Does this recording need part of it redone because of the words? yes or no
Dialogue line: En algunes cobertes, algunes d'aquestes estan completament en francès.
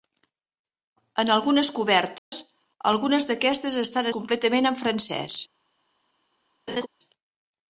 no